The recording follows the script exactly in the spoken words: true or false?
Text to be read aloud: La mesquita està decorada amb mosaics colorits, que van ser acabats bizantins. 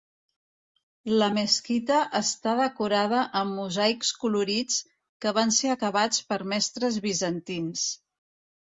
false